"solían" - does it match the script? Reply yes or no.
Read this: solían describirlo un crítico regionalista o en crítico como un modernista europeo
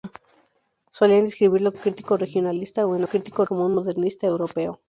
yes